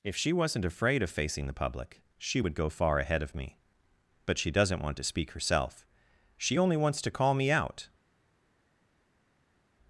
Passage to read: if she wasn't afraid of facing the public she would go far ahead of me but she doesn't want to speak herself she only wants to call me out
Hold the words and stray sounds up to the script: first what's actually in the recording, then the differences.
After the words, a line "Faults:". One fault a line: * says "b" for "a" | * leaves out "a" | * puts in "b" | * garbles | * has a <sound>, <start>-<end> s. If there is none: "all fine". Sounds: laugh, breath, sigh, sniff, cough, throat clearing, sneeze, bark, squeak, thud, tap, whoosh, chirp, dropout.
if she wasn't afraid of facing the public she would go far ahead of me but she doesn't want to speak herself she only wants to call me out
Faults:
all fine